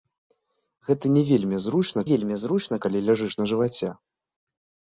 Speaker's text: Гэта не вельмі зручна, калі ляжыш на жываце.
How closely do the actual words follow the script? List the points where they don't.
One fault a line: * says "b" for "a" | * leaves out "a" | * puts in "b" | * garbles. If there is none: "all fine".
* puts in "вельмі зручна"